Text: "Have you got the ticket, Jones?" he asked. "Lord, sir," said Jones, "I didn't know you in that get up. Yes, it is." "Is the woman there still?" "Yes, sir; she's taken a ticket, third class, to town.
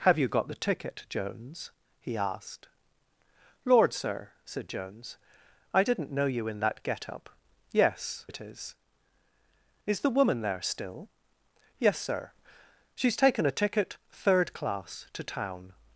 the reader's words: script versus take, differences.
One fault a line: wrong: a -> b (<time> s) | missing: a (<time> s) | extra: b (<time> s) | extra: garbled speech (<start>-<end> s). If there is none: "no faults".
no faults